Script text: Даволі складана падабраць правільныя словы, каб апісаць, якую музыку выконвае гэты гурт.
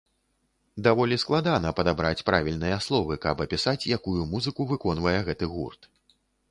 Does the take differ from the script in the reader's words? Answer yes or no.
no